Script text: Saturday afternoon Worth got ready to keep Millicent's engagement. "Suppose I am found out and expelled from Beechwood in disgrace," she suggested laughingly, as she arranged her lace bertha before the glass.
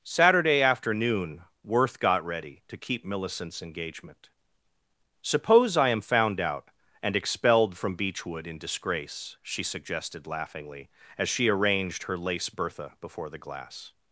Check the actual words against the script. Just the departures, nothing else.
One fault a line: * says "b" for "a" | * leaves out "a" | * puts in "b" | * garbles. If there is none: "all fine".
all fine